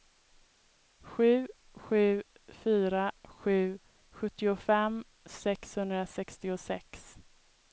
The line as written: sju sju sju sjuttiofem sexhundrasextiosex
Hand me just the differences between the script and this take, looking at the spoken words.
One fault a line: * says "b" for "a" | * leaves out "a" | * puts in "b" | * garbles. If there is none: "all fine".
* puts in "fyra"